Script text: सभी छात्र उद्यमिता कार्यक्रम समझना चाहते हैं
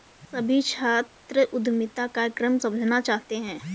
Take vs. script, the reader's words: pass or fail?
pass